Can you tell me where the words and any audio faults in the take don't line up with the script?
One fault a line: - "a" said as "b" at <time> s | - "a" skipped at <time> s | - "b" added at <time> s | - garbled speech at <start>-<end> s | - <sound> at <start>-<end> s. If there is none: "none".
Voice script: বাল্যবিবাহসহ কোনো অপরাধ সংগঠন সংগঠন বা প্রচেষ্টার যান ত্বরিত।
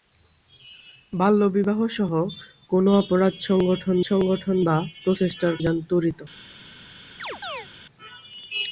- chirp at 7.2-7.7 s